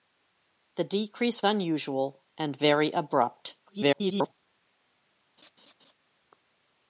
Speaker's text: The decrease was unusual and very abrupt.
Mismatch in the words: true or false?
true